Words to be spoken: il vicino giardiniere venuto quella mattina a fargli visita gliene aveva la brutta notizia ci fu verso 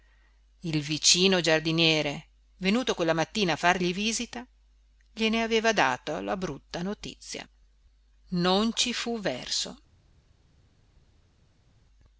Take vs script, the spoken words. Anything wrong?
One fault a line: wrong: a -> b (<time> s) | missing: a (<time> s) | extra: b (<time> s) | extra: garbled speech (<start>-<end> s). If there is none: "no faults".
extra: dato (5.7 s)
extra: non (8.3 s)